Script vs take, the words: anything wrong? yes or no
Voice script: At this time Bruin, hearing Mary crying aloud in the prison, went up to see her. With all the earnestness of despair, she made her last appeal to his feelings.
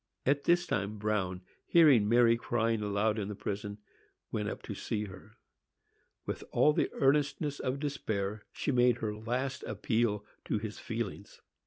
no